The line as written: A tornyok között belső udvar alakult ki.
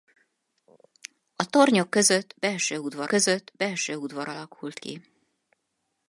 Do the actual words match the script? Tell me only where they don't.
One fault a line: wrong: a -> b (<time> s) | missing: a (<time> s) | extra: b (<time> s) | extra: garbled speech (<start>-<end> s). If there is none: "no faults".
extra: között belső udvar (3.1 s)